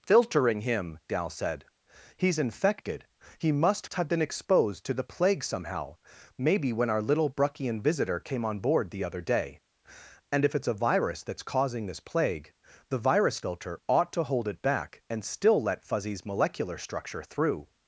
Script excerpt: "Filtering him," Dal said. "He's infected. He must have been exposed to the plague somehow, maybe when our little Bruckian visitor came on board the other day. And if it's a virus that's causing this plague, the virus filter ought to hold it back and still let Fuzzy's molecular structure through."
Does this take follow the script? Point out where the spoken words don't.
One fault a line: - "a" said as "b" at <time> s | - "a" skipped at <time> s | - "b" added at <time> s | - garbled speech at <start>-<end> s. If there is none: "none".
none